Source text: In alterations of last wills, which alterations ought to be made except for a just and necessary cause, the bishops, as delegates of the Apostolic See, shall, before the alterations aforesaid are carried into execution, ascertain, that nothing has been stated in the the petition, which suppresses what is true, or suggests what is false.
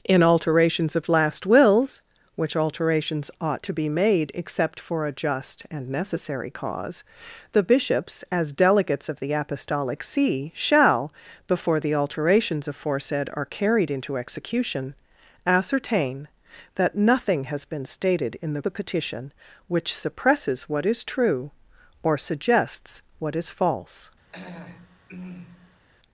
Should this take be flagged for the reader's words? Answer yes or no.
no